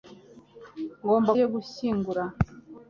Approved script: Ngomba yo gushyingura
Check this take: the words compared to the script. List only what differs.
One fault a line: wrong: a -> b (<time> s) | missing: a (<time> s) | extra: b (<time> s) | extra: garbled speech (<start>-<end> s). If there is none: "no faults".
no faults